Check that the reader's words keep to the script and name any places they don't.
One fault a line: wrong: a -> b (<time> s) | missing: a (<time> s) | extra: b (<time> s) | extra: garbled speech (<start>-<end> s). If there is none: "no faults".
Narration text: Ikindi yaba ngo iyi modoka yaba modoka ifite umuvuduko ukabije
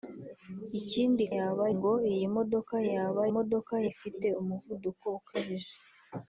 no faults